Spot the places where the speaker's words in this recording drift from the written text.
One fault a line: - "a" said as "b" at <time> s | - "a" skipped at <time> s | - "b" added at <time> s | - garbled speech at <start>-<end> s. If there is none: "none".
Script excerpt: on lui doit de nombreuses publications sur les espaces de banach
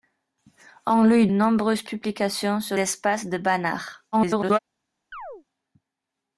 - "doit de" skipped at 1.3 s
- "les" skipped at 2.8 s
- garbled speech at 4.1-4.6 s